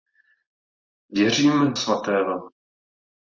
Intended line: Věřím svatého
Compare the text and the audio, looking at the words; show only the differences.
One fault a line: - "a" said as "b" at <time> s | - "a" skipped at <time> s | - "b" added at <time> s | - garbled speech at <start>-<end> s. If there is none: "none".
none